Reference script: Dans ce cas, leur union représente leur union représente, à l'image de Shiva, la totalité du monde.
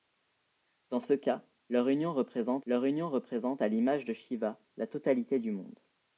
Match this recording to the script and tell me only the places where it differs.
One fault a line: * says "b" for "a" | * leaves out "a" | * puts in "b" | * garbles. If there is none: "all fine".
all fine